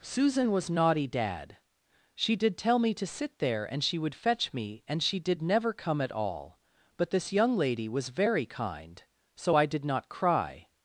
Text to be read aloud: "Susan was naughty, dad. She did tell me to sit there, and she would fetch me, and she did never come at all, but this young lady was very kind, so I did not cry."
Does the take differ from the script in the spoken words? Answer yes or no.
no